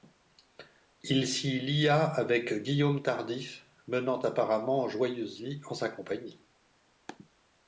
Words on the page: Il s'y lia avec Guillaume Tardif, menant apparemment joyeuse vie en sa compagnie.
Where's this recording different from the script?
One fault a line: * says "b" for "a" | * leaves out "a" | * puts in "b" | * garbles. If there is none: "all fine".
all fine